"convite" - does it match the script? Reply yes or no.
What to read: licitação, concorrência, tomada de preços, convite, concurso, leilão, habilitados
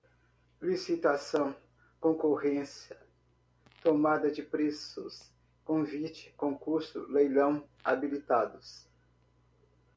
yes